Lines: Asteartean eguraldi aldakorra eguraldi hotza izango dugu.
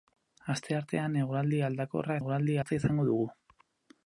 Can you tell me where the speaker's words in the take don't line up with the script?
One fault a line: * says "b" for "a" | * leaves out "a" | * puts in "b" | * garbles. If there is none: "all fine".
all fine